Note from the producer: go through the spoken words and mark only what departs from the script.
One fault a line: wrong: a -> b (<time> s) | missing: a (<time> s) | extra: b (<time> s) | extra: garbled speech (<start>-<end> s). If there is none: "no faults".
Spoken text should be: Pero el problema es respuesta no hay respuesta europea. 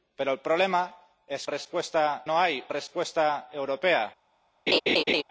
no faults